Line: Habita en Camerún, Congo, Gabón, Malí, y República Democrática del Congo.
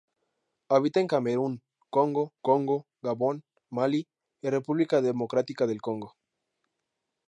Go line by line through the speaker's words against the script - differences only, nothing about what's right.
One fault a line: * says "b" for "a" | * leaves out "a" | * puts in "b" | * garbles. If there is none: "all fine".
* puts in "Congo"